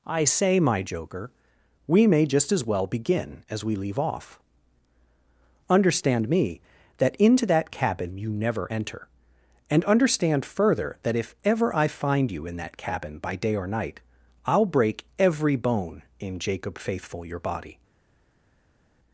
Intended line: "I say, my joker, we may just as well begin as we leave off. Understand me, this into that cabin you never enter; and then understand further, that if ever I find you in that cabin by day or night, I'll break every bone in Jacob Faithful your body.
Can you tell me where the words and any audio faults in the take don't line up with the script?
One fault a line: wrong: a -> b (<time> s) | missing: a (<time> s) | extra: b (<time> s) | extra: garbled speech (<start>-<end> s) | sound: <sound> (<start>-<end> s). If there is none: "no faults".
wrong: this -> that (7.0 s)
missing: then (9.8 s)